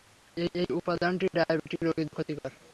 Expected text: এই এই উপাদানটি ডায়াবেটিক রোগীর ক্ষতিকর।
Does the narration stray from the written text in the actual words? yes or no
no